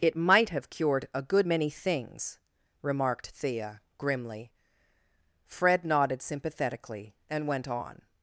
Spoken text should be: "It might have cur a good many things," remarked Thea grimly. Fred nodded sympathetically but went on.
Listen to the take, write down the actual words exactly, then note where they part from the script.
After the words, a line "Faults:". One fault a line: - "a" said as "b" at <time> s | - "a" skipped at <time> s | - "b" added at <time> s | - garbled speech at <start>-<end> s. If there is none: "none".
"It might have cured a good many things," remarked Thea grimly. Fred nodded sympathetically and went on.
Faults:
- "cur" said as "cured" at 0.7 s
- "but" said as "and" at 7.3 s